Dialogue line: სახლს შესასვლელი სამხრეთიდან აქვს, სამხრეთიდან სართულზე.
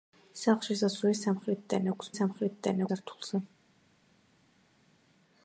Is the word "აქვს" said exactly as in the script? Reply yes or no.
yes